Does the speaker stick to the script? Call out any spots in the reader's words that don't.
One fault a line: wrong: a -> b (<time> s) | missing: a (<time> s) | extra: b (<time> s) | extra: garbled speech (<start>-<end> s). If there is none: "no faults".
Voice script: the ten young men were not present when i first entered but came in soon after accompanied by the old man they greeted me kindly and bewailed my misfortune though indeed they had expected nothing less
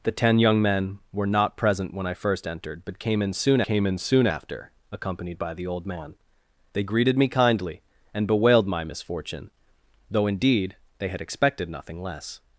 extra: came in soon (3.6 s)